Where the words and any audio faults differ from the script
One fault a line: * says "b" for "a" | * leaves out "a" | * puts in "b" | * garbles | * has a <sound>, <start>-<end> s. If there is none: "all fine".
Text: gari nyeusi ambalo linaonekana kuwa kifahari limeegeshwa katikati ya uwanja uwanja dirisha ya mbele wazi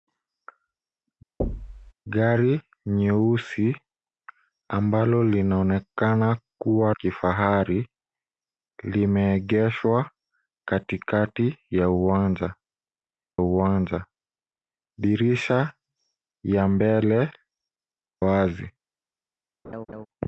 * has a thud, 1.4-1.9 s
* has a laugh, 19.6-20.1 s